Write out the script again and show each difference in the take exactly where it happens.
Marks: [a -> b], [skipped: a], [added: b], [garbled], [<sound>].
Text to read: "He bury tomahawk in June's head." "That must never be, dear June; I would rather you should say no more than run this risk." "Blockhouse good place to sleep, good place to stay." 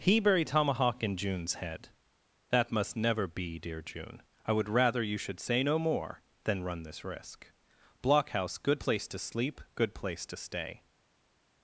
"He bury tomahawk in June's head." "That must never be, dear June; I would rather you should say no more than run this risk." "Blockhouse good place to sleep, good place to stay."